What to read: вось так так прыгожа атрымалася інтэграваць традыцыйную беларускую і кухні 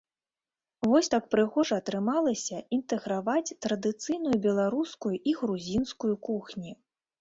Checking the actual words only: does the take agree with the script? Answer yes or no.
no